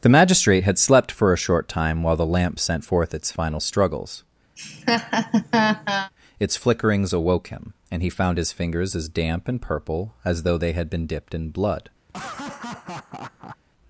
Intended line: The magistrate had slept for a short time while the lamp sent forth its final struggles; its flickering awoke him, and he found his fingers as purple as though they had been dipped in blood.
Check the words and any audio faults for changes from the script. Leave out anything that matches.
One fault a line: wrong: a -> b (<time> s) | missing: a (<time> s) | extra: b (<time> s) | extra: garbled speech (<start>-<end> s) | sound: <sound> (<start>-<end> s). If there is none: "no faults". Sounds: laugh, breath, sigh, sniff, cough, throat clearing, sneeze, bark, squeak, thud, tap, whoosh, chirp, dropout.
sound: laugh (4.6-6.1 s)
wrong: flickering -> flickerings (6.6 s)
extra: damp and (9.1 s)
sound: laugh (12.1-13.6 s)